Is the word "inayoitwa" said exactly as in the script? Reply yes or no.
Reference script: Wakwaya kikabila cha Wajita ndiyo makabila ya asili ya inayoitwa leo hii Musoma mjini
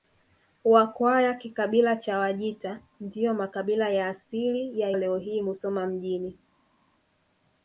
no